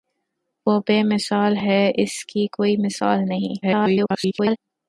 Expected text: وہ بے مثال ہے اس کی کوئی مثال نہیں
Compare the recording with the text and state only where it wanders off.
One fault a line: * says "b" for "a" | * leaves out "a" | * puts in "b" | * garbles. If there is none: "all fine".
* garbles